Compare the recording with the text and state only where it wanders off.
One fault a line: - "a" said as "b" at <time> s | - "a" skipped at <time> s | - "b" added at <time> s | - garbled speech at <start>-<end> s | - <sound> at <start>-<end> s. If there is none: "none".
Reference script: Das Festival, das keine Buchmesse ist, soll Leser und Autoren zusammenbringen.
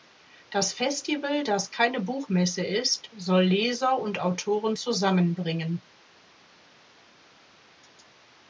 none